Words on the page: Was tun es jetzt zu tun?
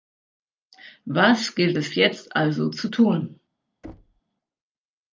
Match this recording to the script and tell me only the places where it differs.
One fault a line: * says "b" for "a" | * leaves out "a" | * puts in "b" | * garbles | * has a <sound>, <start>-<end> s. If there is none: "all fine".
* says "gilt" for "tun"
* puts in "also"
* has a thud, 3.8-4.2 s